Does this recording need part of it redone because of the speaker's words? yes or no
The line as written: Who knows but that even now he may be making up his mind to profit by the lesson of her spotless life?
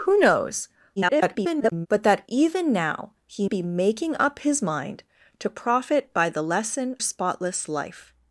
yes